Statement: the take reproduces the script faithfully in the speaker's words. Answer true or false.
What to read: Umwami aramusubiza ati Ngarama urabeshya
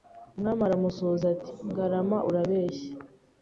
true